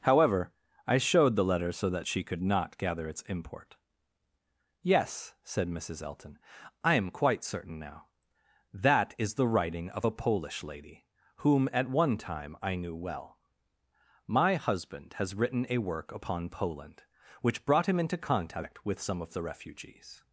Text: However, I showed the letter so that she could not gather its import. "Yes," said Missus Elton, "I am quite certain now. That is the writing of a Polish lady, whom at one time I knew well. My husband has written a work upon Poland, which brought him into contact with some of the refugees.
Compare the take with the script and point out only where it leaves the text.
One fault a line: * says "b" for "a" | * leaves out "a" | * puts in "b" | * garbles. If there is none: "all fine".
all fine